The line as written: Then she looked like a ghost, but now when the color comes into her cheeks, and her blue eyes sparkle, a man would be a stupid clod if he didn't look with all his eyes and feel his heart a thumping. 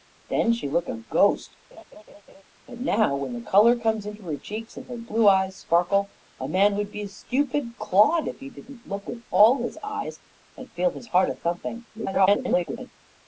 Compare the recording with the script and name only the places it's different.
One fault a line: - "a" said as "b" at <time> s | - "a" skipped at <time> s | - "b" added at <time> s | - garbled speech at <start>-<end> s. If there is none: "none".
- "like" skipped at 0.9 s
- garbled speech at 11.9-12.9 s